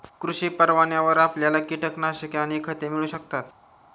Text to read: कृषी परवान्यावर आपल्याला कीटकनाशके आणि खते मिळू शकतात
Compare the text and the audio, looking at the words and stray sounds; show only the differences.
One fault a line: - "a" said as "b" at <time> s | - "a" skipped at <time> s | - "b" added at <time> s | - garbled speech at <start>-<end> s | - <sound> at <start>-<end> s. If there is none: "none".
none